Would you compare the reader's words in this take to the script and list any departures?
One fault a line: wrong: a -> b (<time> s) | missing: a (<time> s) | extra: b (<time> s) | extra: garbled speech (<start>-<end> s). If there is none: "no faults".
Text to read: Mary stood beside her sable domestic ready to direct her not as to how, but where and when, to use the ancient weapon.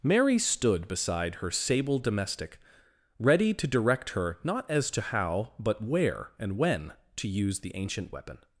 no faults